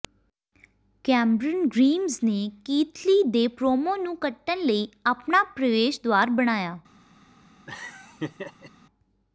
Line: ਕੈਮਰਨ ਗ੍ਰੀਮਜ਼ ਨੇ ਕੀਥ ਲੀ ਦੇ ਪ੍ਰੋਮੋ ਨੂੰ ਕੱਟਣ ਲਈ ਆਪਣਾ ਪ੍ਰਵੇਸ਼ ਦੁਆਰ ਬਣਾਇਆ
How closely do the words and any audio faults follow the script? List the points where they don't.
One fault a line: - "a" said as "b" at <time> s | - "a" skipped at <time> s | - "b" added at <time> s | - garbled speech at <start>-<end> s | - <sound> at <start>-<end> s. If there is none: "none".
- laugh at 7.7-8.7 s